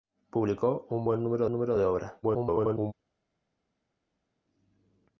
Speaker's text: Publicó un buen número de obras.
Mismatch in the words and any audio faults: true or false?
true